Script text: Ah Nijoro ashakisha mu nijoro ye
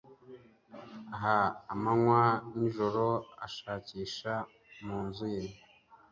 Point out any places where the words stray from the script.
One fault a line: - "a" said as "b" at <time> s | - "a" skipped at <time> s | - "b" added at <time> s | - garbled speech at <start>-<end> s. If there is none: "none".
- "Amanywa" added at 1.7 s
- "nijoro" said as "nzu" at 5.1 s